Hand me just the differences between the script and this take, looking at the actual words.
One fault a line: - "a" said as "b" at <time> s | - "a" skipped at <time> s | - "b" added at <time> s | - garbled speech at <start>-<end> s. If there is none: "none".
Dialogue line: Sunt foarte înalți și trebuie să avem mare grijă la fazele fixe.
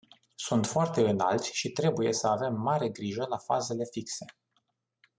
none